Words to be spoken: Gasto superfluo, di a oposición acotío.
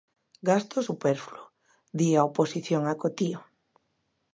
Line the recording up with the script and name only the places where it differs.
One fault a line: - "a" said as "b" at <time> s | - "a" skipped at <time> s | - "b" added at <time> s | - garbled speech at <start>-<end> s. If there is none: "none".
none